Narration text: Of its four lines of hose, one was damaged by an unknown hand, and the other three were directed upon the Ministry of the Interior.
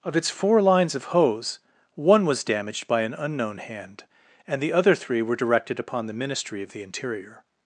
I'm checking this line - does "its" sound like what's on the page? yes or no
yes